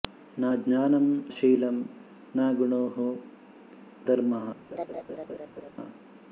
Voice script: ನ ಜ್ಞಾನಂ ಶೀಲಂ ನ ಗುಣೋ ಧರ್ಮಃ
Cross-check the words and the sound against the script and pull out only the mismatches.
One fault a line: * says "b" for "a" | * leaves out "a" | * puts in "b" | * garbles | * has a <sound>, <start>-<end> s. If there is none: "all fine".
* has a laugh, 4.7-5.7 s